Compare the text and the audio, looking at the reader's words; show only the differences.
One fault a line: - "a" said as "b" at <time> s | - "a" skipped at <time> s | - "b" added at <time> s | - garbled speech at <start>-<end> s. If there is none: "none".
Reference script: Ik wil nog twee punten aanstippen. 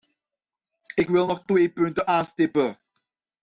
none